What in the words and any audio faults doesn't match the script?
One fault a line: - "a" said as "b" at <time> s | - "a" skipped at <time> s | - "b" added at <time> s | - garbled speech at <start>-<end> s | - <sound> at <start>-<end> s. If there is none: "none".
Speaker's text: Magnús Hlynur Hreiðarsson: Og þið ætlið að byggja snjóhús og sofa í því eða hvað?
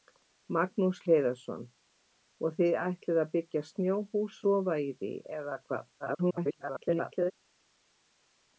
- "Hlynur" skipped at 1.0 s
- "og" skipped at 4.4 s
- garbled speech at 6.0-7.3 s